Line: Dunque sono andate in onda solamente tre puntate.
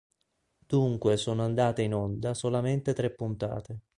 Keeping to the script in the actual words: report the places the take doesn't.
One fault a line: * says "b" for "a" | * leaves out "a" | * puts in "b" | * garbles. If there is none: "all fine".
all fine